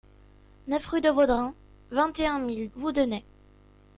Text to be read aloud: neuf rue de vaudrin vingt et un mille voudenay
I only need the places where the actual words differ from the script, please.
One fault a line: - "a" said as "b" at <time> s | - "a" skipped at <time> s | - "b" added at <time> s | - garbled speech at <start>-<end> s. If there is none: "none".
none